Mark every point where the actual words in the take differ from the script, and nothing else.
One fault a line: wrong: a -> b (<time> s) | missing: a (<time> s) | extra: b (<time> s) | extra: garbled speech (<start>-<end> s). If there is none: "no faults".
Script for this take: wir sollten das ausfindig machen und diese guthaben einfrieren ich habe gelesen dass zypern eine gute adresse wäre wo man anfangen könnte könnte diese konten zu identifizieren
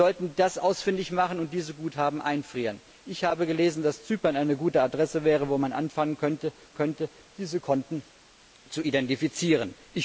no faults